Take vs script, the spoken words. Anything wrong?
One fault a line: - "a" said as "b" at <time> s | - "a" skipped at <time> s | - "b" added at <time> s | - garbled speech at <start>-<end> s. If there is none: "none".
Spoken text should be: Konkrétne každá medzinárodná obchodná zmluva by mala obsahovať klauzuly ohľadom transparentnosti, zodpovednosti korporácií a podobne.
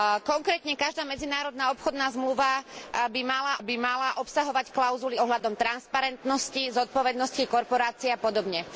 - "by mala" added at 3.6 s